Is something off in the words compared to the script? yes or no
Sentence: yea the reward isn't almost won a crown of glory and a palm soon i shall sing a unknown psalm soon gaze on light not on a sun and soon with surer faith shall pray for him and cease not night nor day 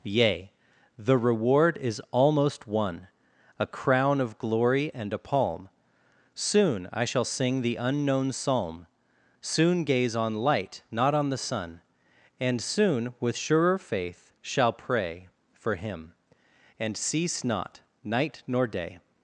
yes